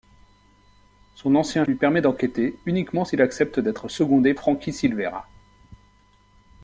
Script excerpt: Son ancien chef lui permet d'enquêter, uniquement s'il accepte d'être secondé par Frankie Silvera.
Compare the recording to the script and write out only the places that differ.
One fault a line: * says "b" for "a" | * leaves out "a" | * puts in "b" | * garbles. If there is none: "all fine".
* leaves out "chef"
* leaves out "par"